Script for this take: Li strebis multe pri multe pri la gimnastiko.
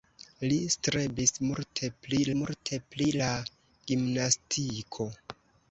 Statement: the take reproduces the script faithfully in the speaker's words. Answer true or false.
true